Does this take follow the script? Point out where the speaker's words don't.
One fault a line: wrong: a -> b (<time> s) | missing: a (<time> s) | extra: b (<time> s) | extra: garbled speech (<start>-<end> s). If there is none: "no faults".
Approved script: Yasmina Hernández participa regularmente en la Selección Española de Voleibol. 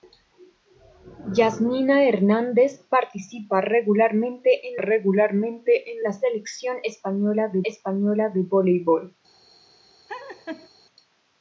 extra: regularmente en (4.8 s)
extra: Española de (7.6 s)